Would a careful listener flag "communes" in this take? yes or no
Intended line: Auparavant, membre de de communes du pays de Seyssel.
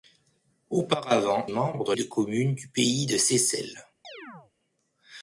no